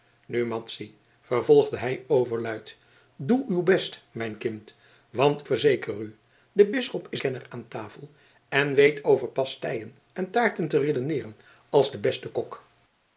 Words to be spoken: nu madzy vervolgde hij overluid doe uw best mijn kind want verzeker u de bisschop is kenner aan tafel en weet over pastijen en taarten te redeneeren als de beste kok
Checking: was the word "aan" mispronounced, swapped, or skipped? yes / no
no